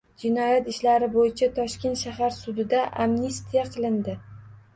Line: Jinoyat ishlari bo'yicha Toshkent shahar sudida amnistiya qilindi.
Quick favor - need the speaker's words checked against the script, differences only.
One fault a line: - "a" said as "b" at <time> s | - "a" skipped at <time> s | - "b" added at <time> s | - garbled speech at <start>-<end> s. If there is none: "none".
none